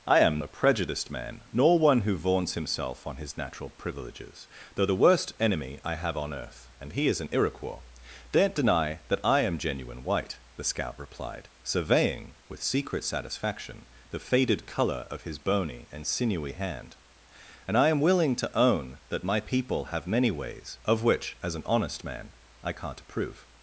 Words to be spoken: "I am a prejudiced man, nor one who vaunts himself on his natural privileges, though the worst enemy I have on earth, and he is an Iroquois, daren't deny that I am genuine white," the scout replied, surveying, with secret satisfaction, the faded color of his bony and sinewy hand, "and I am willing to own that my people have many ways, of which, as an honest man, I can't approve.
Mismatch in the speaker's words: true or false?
false